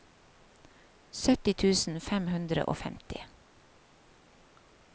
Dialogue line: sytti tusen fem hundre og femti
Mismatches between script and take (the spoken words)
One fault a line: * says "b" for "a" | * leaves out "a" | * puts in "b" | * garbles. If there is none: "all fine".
all fine